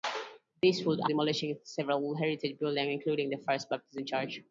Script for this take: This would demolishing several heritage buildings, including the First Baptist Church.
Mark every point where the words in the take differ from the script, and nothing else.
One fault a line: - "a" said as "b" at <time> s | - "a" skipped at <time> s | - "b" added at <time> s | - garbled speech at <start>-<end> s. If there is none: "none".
none